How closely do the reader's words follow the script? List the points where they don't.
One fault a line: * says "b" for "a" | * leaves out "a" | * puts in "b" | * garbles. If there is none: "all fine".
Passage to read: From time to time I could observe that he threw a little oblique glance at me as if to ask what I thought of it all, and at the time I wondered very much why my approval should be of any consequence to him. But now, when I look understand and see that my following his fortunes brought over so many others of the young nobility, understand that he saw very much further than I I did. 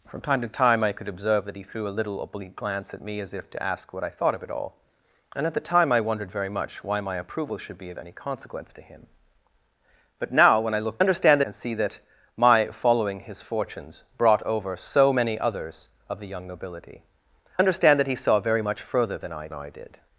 all fine